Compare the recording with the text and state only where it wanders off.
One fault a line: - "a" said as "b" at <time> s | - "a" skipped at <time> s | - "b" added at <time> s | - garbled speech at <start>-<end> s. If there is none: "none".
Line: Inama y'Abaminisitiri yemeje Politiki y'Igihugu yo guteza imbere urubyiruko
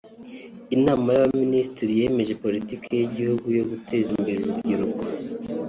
none